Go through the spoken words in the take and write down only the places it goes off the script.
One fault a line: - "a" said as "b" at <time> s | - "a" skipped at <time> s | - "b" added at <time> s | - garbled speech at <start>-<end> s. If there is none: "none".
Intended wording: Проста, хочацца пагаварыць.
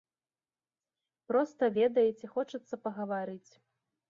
- "ведаеце" added at 1.8 s